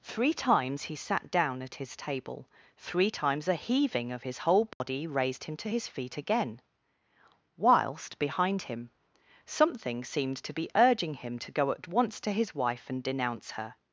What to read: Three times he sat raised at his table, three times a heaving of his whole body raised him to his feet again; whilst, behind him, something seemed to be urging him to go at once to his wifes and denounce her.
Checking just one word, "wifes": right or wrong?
wrong